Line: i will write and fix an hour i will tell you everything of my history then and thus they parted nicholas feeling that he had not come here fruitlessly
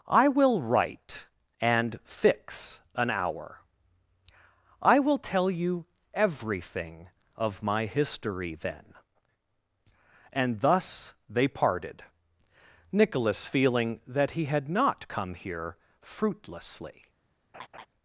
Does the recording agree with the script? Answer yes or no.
yes